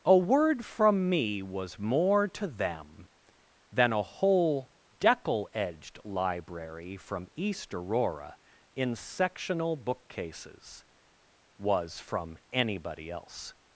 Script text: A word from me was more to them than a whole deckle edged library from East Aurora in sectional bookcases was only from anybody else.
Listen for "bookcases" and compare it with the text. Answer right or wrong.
right